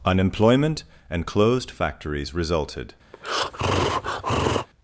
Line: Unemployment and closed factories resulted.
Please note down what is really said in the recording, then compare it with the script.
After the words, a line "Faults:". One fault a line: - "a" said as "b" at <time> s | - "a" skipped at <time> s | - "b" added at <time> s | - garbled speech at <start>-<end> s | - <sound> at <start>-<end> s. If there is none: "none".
Unemployment and closed factories resulted.
Faults:
- breath at 3.1-4.7 s